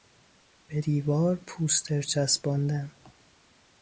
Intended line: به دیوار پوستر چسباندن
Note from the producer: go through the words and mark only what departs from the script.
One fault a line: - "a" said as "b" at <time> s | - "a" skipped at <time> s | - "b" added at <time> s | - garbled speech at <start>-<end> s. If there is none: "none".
none